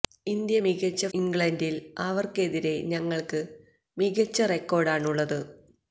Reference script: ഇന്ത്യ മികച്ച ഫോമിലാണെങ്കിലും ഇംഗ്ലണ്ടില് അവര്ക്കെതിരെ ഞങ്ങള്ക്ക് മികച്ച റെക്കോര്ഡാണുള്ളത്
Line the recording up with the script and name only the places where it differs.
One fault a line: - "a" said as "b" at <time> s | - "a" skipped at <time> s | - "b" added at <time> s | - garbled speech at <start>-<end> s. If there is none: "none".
- "ഫോമിലാണെങ്കിലും" skipped at 1.1 s